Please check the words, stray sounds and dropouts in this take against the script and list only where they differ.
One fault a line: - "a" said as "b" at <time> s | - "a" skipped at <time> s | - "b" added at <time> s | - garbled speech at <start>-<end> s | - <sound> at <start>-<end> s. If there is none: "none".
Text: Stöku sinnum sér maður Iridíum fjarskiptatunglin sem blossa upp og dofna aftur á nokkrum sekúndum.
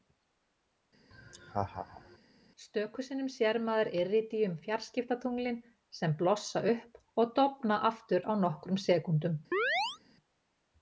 - laugh at 1.1-2.2 s
- chirp at 9.5-10.0 s